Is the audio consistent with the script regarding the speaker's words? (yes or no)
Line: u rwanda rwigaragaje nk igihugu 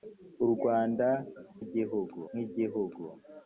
no